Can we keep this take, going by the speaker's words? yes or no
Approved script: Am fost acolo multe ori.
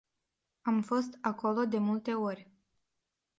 no